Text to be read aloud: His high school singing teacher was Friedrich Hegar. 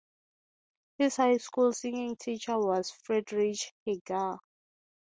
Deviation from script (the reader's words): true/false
false